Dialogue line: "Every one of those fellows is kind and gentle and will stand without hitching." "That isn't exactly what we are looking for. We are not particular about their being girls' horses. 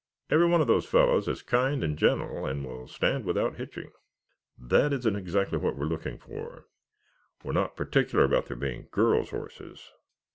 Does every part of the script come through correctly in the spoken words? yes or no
yes